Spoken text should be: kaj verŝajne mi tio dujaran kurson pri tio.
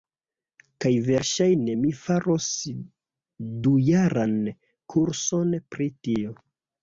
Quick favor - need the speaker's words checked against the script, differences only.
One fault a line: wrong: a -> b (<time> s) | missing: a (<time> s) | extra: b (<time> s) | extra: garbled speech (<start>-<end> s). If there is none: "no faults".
wrong: tio -> faros (2.0 s)